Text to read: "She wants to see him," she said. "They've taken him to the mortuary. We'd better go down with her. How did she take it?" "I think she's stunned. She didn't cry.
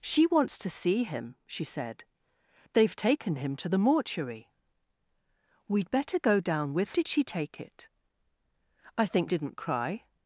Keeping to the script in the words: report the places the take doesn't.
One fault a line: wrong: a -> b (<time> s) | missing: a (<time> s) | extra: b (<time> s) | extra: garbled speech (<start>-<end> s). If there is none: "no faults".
missing: her How (7.0 s)
missing: she's stunned She (9.3 s)